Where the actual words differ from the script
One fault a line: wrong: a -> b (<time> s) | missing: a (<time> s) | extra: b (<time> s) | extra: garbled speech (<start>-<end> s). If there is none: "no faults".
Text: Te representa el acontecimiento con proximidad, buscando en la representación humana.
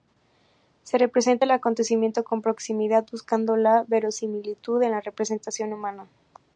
wrong: Te -> Se (0.8 s)
extra: la verosimilitud (3.6 s)